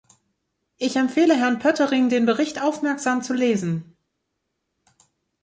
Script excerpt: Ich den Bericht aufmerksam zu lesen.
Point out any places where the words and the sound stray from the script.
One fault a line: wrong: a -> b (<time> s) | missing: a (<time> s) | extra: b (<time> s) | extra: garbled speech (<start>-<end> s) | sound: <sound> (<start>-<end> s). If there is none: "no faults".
extra: empfehle Herrn Poettering (1.0 s)